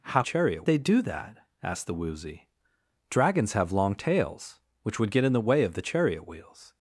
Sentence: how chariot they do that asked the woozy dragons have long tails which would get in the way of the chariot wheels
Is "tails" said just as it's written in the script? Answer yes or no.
yes